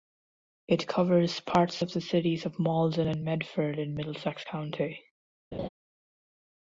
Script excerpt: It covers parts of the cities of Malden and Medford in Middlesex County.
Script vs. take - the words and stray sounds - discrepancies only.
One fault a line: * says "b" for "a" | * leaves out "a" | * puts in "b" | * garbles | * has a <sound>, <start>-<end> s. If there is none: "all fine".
* has a laugh, 5.5-5.7 s